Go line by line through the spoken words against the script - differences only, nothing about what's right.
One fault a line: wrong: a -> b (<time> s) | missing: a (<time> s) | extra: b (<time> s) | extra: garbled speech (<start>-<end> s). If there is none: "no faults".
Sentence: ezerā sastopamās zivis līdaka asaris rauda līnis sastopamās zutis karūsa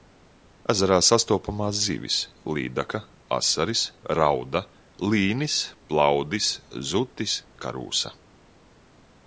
wrong: sastopamās -> plaudis (5.9 s)